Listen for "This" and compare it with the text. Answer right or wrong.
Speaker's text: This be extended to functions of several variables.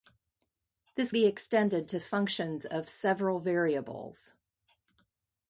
right